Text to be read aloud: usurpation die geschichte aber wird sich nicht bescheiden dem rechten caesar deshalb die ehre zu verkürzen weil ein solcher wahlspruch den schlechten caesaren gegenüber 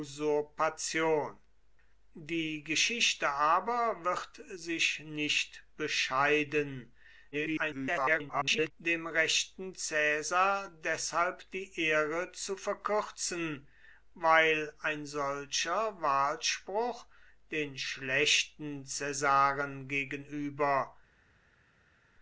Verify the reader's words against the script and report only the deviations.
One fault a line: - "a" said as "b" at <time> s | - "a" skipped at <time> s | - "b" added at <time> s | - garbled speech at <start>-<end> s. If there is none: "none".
- garbled speech at 7.3-8.7 s